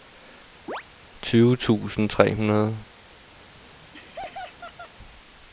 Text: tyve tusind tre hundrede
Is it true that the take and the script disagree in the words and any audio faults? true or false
true